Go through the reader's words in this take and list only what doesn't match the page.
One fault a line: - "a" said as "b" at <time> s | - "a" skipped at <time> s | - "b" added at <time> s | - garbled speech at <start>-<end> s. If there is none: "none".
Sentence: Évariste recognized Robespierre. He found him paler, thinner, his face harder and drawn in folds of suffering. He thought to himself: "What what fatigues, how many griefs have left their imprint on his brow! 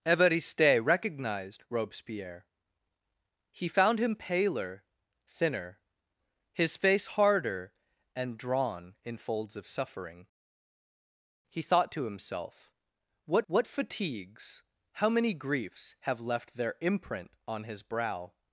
none